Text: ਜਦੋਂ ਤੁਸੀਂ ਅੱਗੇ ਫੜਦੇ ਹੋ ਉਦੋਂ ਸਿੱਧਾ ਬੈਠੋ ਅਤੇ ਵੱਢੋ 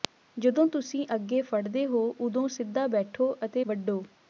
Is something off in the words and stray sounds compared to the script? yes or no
no